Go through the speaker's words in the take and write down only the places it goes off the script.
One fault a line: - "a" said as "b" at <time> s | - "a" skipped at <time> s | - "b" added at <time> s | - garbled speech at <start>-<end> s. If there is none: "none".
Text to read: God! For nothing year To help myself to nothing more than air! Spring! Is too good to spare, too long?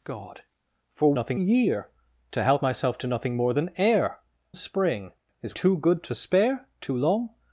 none